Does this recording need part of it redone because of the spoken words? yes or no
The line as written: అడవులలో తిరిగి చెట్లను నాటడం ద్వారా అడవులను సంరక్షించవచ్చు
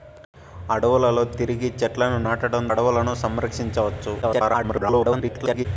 yes